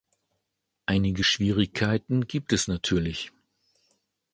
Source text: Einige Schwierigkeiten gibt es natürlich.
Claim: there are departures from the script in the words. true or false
false